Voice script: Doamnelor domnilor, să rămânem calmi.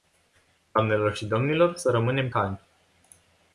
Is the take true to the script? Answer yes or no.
no